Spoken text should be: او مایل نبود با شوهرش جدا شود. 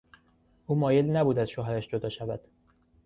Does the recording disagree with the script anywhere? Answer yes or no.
yes